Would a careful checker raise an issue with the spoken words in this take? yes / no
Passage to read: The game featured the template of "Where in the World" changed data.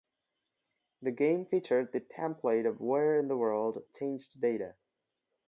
no